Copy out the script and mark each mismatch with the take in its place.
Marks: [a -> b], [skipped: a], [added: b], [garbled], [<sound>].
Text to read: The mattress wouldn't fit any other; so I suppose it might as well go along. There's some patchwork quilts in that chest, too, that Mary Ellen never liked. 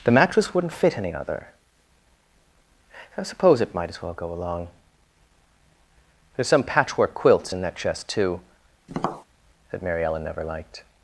The mattress wouldn't fit any other; [skipped: so] I suppose it might as well go along. There's some patchwork quilts in that chest, too, [tap] that Mary Ellen never liked.